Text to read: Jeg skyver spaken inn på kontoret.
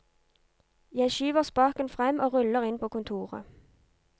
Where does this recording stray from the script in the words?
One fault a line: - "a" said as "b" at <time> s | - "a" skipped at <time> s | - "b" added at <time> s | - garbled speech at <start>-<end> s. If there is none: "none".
- "frem og ruller" added at 1.9 s